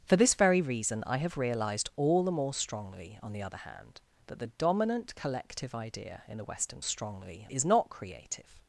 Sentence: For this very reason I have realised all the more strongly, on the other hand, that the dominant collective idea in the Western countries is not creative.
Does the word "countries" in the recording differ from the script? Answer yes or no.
yes